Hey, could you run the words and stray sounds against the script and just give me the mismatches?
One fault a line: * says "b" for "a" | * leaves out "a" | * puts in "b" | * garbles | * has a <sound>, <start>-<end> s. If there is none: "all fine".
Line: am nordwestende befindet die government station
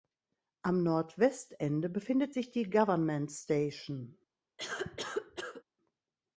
* puts in "sich"
* has a cough, 4.6-5.6 s